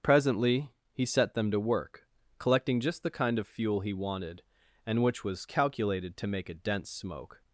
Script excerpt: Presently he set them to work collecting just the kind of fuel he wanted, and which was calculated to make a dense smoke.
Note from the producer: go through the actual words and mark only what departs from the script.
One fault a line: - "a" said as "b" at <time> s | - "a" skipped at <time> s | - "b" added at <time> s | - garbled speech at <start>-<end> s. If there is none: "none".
none